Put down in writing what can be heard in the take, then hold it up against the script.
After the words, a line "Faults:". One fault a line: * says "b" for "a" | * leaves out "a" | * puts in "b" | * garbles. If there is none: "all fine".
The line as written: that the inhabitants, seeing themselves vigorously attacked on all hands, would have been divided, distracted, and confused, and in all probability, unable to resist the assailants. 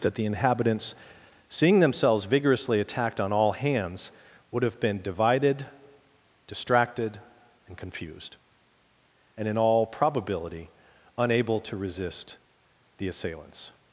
that the inhabitants, seeing themselves vigorously attacked on all hands, would have been divided, distracted, and confused, and in all probability, unable to resist the assailants.
Faults:
all fine